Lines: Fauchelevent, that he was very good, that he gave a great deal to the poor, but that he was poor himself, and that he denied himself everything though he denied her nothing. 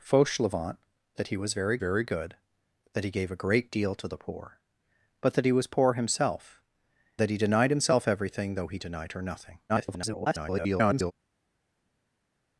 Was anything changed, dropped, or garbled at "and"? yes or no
yes